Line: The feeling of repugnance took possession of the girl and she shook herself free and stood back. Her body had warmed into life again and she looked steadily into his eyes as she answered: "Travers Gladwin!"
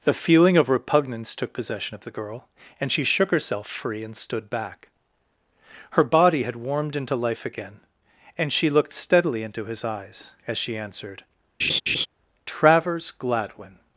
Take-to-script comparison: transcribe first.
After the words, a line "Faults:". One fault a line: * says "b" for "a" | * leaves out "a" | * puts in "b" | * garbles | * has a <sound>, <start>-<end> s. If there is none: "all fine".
The feeling of repugnance took possession of the girl and she shook herself free and stood back. Her body had warmed into life again and she looked steadily into his eyes as she answered: "Travers Gladwin!"
Faults:
* has a laugh, 11.6-12.1 s